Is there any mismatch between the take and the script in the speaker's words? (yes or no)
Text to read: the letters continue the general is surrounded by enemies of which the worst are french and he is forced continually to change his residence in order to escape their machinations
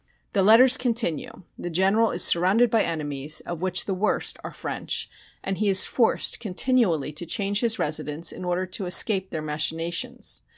no